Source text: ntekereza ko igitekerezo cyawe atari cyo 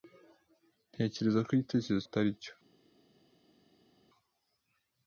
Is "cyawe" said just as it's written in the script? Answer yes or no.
no